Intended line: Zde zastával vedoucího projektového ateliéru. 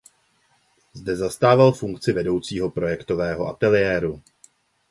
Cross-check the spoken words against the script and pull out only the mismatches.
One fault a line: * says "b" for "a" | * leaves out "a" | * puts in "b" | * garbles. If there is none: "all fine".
* puts in "funkci"